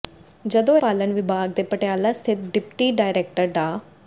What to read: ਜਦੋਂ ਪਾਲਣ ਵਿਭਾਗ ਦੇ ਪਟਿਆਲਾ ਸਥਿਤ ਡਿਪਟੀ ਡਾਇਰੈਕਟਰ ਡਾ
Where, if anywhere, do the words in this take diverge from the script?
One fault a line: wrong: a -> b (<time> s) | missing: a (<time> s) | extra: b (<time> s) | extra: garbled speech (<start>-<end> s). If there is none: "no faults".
no faults